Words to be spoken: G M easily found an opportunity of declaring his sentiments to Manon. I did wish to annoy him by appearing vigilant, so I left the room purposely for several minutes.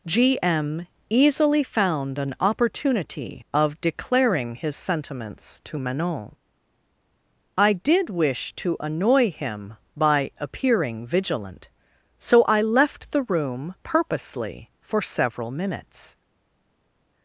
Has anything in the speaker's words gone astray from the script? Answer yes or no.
no